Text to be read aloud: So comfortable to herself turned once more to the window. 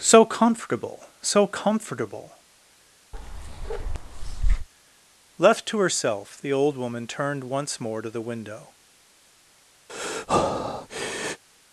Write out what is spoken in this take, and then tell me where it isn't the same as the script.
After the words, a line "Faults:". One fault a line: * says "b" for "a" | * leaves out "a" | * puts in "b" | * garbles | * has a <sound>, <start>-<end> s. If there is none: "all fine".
So comfortable so comfortable! Left to herself the old woman turned once more to the window.
Faults:
* puts in "so comfortable Left"
* has a bark, 3.1-4.7 s
* puts in "the old woman"
* has a breath, 9.9-11.4 s